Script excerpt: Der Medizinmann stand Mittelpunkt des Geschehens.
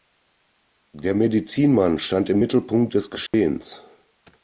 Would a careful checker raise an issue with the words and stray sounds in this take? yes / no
yes